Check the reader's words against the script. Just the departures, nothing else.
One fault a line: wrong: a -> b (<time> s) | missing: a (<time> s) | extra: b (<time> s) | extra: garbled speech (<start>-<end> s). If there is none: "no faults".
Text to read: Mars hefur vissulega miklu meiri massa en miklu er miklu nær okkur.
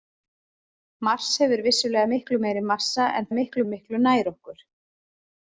no faults